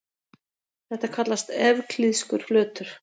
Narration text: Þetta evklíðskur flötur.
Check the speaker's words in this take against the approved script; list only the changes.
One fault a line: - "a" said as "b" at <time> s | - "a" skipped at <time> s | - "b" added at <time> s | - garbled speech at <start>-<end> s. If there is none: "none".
- "kallast" added at 1.2 s